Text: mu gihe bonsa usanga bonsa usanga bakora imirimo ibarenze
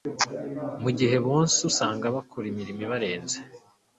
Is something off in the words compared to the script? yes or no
yes